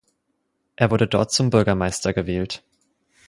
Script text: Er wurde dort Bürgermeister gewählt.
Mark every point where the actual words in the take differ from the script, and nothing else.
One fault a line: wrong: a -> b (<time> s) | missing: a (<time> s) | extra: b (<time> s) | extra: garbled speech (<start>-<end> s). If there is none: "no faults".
extra: zum (1.3 s)